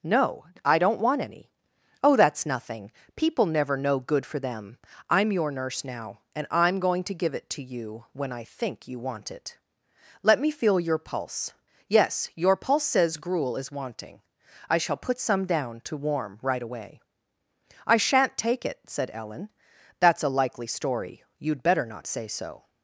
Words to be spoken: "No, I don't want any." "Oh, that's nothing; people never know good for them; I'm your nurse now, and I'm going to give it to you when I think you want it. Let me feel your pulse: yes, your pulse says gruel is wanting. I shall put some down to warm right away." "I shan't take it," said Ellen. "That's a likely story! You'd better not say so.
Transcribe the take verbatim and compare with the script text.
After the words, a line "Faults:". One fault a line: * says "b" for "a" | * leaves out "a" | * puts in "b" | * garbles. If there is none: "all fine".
"No, I don't want any." "Oh, that's nothing; people never know good for them; I'm your nurse now, and I'm going to give it to you when I think you want it. Let me feel your pulse: yes, your pulse says gruel is wanting. I shall put some down to warm right away." "I shan't take it," said Ellen. "That's a likely story! You'd better not say so.
Faults:
all fine